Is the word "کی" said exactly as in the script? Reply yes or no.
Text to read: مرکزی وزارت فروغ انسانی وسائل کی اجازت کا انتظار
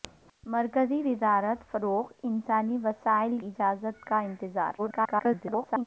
no